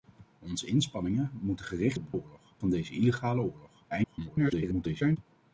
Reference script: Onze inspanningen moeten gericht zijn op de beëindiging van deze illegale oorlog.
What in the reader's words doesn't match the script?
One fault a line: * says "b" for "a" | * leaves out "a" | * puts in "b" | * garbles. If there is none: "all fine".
* leaves out "zijn"
* says "oorlog" for "beëindiging"
* garbles